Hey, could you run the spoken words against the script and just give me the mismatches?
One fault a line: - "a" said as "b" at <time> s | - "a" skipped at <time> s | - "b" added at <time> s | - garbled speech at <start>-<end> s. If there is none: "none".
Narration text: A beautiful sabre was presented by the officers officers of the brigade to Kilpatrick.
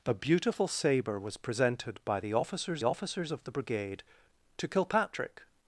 none